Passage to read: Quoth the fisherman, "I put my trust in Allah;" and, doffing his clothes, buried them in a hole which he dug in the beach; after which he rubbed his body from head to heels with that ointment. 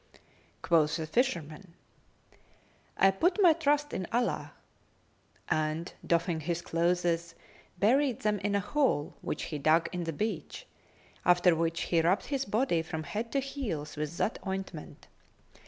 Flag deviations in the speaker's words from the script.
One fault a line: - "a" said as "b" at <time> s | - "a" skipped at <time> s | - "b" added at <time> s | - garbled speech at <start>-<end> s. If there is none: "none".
none